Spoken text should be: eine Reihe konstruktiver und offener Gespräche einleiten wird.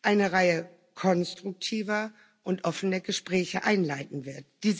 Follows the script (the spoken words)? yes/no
yes